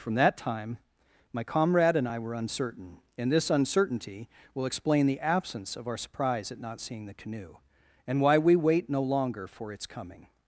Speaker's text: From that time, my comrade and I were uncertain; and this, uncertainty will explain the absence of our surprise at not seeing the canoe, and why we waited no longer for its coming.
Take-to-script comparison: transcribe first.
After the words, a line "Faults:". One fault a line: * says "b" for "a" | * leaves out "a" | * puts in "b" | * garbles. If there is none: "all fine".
From that time, my comrade and I were uncertain; and this, uncertainty will explain the absence of our surprise at not seeing the canoe, and why we wait no longer for its coming.
Faults:
* says "wait" for "waited"